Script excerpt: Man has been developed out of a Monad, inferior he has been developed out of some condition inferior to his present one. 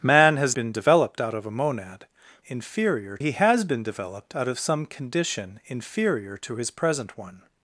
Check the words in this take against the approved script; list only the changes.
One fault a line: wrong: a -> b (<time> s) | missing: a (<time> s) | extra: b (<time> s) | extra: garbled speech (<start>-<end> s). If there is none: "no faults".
no faults